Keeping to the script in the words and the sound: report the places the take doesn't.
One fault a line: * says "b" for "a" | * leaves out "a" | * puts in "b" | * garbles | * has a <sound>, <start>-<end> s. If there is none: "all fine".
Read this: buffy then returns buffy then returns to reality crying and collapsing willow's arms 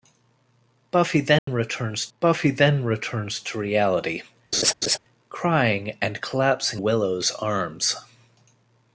* has a dropout, 1.4-1.5 s
* has a laugh, 4.5-5.0 s